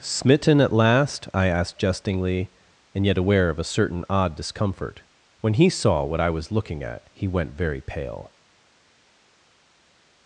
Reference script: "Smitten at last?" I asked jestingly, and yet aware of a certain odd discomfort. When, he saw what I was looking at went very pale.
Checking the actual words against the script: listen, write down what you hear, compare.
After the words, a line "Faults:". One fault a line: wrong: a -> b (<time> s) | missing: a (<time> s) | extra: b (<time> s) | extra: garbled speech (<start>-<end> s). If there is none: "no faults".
"Smitten at last?" I asked jestingly, and yet aware of a certain odd discomfort. When, he saw what I was looking at he went very pale.
Faults:
extra: he (7.1 s)